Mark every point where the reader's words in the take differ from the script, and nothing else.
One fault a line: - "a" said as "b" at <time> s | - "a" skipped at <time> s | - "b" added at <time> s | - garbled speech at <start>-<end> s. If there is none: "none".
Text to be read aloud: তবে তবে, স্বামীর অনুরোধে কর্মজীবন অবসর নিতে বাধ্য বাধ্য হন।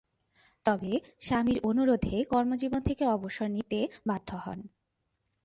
- "তবে" skipped at 0.9 s
- "থেকে" added at 2.8 s
- "বাধ্য" skipped at 4.3 s